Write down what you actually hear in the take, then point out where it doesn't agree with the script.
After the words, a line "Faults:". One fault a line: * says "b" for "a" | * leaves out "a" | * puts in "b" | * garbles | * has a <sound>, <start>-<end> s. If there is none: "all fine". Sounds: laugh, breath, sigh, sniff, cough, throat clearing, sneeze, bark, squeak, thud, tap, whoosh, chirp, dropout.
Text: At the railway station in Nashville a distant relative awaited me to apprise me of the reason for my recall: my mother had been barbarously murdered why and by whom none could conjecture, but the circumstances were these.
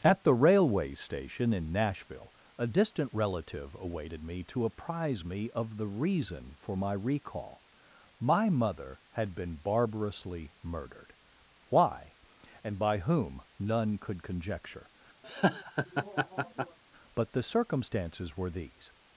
At the railway station in Nashville a distant relative awaited me to apprise me of the reason for my recall: my mother had been barbarously murdered why and by whom none could conjecture, but the circumstances were these.
Faults:
* has a laugh, 15.2-16.8 s